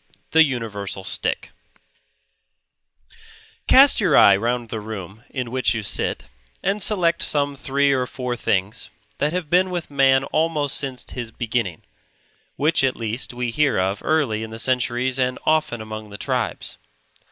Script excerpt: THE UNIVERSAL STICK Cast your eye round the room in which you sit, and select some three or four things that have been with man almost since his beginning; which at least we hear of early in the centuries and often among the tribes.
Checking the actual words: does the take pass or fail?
pass